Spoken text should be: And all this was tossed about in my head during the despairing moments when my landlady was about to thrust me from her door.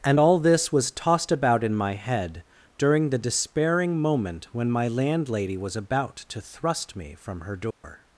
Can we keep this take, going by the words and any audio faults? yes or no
no